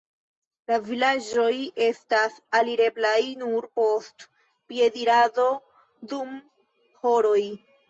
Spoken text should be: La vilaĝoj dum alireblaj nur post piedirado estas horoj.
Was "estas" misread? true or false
true